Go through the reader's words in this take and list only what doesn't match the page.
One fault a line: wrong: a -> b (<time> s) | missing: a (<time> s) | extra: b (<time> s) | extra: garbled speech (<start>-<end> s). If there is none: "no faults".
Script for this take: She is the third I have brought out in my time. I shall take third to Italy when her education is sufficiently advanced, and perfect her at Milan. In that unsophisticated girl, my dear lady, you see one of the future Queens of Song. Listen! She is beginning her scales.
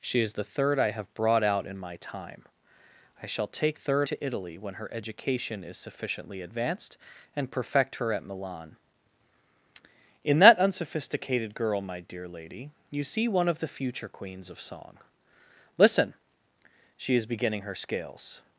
no faults